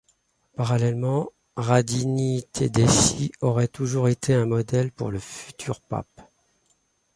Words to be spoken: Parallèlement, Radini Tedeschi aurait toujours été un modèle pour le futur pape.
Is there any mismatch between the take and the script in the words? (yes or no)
no